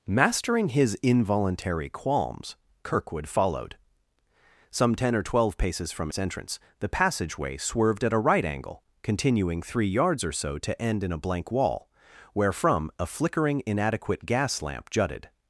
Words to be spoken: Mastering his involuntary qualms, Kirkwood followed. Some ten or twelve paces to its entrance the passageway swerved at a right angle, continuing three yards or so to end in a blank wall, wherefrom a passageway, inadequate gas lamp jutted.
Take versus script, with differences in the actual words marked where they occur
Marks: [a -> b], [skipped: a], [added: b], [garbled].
Mastering his involuntary qualms, Kirkwood followed. Some ten or twelve paces [to -> from] its entrance the passageway swerved at a right angle, continuing three yards or so to end in a blank wall, wherefrom a [passageway, -> flickering] inadequate gas lamp jutted.